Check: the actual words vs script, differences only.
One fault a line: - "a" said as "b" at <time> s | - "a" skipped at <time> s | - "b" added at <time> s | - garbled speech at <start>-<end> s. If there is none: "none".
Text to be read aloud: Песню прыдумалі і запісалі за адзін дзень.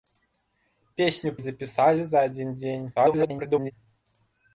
- "прыдумалі" skipped at 1.3 s
- garbled speech at 3.0-3.7 s